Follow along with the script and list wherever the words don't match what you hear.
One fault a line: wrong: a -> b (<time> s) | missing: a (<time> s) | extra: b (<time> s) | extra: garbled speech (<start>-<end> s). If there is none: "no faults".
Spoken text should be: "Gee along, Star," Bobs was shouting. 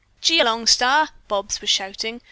no faults